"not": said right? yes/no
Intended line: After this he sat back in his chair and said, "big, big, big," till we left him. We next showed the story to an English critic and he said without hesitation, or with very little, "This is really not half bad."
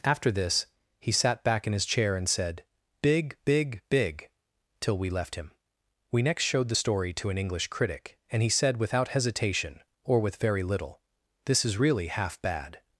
no